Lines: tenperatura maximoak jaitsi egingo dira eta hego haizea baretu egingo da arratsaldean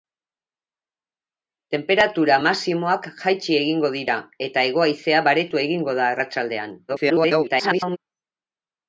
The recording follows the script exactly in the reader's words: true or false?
false